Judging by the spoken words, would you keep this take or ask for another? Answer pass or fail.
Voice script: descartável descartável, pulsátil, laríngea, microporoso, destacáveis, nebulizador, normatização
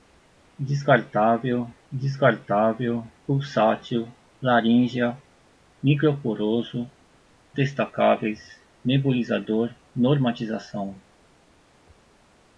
pass